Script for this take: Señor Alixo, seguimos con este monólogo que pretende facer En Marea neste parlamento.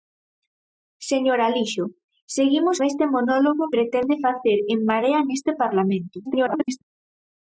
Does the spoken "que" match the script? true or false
false